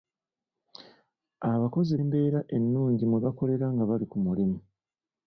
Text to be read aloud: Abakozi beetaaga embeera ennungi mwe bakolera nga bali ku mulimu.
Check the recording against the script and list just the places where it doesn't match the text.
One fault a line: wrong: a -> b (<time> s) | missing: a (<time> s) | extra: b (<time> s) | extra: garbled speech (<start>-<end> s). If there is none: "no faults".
missing: beetaaga (1.9 s)